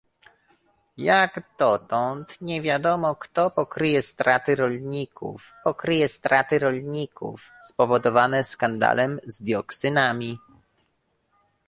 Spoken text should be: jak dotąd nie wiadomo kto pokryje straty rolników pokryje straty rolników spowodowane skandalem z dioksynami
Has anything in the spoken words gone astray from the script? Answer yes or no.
no